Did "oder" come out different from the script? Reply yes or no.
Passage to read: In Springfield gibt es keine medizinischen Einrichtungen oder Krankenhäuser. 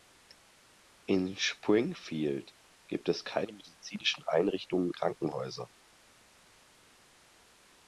yes